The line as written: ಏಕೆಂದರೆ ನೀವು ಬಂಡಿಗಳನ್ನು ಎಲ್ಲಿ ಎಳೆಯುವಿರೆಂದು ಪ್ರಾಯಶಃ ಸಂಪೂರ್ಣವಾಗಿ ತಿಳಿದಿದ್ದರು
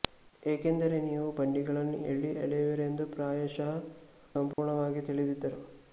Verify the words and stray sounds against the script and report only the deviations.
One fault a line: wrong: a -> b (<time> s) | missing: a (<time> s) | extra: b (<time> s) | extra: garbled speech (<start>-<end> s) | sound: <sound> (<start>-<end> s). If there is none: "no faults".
sound: dropout (4.5-4.6 s)